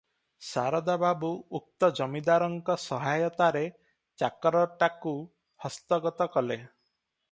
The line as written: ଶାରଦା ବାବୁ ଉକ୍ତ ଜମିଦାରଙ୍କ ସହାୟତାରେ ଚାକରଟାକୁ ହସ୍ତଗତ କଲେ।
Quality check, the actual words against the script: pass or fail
pass